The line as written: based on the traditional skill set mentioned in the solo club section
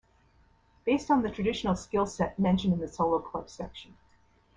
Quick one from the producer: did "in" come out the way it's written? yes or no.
yes